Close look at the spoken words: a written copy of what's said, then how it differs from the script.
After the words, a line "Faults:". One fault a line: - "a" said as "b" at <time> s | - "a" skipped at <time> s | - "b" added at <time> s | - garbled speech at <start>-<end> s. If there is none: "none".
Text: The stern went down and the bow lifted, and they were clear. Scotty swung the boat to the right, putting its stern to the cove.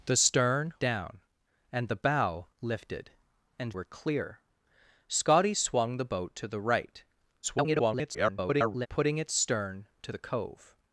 The stern down and the bow lifted, and were clear. Scotty swung the boat to the right, [garbled] putting its stern to the cove.
Faults:
- "went" skipped at 0.7 s
- "they" skipped at 3.7 s
- garbled speech at 7.4-8.9 s